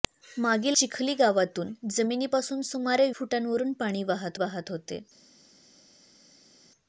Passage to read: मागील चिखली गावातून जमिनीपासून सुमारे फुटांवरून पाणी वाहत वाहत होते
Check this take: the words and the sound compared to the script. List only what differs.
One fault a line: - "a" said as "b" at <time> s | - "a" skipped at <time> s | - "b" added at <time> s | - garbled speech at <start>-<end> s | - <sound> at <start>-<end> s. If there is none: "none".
none